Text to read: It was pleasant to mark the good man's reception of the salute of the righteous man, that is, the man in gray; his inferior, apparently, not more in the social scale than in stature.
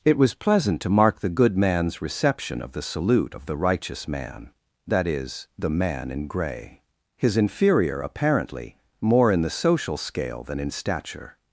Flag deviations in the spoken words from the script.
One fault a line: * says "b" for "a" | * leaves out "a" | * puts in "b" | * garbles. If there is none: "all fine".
* leaves out "not"